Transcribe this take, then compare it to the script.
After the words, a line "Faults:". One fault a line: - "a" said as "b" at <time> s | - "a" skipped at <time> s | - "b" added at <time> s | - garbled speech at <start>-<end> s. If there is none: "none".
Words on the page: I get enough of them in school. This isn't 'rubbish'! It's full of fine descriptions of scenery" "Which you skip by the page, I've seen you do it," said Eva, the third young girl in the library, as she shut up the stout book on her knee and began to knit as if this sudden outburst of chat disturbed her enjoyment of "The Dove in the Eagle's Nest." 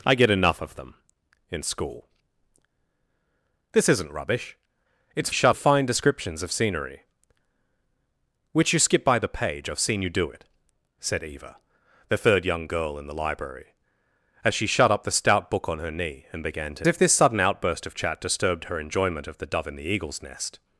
I get enough of them in school. This isn't 'rubbish'! It's shut of fine descriptions of scenery" "Which you skip by the page, I've seen you do it," said Eva, the third young girl in the library, as she shut up the stout book on her knee and began to if this sudden outburst of chat disturbed her enjoyment of "The Dove in the Eagle's Nest."
Faults:
- "full" said as "shut" at 5.3 s
- "knit as" skipped at 16.9 s